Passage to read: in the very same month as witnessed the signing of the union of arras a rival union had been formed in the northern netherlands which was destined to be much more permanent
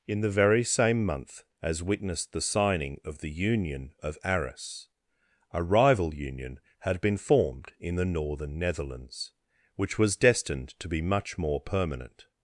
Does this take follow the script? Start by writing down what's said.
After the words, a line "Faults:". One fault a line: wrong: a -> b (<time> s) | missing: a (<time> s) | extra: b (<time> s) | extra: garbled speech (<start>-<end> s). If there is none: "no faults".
in the very same month as witnessed the signing of the union of arras a rival union had been formed in the northern netherlands which was destined to be much more permanent
Faults:
no faults